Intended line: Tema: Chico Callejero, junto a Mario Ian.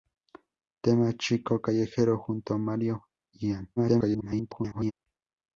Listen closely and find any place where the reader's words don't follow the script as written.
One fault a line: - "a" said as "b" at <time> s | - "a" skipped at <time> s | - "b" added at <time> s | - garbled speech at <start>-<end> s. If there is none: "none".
- garbled speech at 3.8-4.9 s